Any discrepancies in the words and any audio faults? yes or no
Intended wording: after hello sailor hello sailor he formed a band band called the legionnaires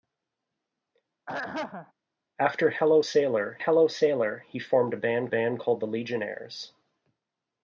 yes